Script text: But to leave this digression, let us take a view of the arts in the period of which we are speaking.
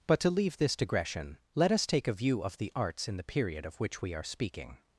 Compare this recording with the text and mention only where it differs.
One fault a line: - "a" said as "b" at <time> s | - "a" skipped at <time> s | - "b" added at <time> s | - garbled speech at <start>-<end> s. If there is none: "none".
none